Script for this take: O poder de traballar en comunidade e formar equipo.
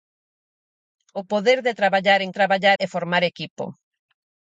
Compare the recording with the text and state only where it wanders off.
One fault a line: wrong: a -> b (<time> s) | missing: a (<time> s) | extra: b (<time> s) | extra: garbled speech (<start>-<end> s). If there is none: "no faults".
wrong: comunidade -> traballar (2.4 s)